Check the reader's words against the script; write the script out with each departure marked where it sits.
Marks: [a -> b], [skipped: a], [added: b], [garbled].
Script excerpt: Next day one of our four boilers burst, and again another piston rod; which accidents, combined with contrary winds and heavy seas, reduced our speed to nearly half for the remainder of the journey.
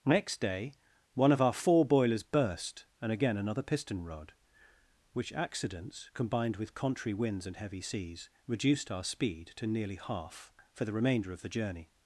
Next day one of our four boilers burst, and again another piston rod; which accidents, combined with contrary winds and heavy seas, reduced our speed to nearly half for the remainder of the journey.